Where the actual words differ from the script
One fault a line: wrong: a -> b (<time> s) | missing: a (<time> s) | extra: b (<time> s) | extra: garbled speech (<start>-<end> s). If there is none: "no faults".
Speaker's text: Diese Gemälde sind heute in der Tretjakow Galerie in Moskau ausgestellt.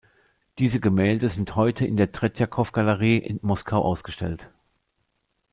no faults